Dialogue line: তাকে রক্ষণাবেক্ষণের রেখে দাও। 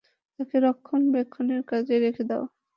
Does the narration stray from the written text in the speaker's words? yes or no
yes